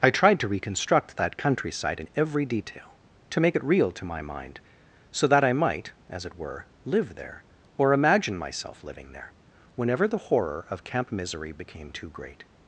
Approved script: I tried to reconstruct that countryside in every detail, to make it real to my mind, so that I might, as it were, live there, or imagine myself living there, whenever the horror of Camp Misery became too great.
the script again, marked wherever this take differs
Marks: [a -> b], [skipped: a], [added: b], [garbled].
I tried to reconstruct that countryside in every detail, to make it real to my mind, so that I might, as it were, live there, or imagine myself living there, whenever the horror of Camp Misery became too great.